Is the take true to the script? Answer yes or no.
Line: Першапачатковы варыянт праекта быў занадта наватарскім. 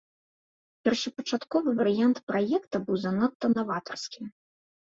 yes